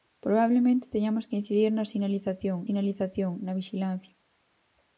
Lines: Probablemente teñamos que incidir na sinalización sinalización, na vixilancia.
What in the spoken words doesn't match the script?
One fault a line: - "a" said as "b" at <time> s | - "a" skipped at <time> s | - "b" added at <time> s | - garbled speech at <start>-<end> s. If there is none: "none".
none